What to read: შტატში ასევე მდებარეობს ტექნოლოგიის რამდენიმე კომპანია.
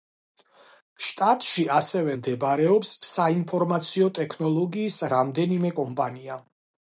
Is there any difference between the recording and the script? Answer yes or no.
yes